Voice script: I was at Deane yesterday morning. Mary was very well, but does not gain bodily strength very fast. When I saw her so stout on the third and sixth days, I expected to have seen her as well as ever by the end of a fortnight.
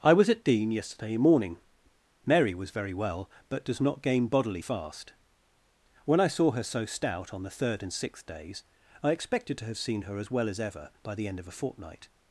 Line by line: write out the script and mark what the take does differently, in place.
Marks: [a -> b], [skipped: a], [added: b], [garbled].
I was at Deane yesterday morning. Mary was very well, but does not gain bodily [skipped: strength very] fast. When I saw her so stout on the third and sixth days, I expected to have seen her as well as ever by the end of a fortnight.